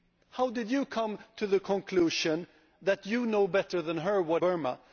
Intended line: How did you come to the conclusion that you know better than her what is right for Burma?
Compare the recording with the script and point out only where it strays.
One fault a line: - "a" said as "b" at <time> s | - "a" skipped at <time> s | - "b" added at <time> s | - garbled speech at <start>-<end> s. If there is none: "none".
- "is right for" skipped at 4.4 s